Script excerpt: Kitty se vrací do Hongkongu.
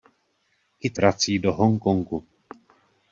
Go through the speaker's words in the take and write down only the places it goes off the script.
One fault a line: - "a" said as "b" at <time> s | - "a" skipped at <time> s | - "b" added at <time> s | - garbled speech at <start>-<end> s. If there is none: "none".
- "se" skipped at 1.0 s